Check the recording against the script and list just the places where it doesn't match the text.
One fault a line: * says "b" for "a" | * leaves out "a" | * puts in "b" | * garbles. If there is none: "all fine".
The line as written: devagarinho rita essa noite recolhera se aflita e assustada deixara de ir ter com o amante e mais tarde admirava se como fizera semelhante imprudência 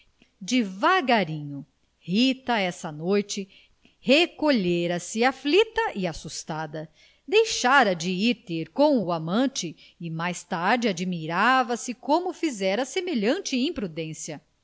all fine